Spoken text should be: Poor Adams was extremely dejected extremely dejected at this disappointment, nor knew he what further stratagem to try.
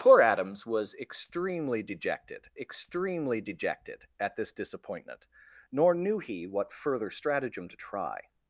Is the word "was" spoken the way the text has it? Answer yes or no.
yes